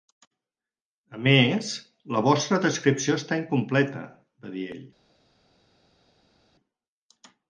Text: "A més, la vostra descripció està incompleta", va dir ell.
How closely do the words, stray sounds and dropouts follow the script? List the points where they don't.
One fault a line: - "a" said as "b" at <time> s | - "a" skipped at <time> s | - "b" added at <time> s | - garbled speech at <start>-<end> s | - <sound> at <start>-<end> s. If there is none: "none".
none